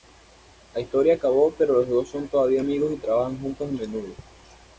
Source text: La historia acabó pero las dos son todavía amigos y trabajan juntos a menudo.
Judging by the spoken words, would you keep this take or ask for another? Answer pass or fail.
fail